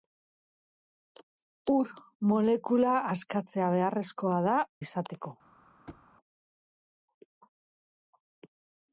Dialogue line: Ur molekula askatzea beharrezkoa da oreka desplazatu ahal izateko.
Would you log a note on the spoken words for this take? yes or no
yes